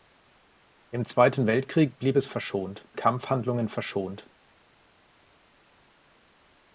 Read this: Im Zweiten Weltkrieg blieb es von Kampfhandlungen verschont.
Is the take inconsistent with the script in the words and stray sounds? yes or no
yes